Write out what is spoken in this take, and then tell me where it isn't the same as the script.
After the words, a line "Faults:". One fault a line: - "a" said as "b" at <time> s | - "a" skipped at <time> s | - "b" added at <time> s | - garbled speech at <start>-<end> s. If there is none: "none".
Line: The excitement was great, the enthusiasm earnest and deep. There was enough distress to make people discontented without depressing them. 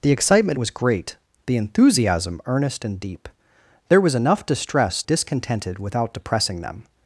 The excitement was great, the enthusiasm earnest and deep. There was enough distress discontented without depressing them.
Faults:
- "to make people" skipped at 5.0 s